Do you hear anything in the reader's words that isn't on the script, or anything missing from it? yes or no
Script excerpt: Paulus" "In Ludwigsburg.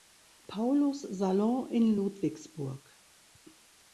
yes